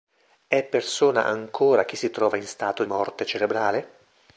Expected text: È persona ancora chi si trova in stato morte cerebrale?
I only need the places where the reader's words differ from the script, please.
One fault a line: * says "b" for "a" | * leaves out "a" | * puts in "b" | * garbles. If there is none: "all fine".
all fine